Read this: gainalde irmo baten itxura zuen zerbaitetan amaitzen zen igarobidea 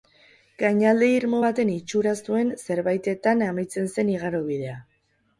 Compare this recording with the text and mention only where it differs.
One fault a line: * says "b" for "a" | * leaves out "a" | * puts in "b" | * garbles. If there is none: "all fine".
all fine